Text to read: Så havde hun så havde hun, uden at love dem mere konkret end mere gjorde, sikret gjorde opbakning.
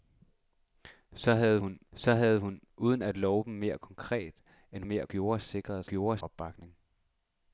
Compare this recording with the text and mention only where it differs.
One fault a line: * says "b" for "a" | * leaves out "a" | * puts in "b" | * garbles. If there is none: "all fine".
all fine